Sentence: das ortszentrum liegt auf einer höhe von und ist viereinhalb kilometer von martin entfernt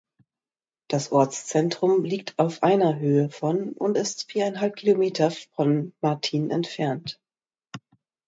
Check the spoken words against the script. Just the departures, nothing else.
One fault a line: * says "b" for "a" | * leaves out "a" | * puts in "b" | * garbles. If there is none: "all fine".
all fine